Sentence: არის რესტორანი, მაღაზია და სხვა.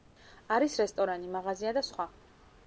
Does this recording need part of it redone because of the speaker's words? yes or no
no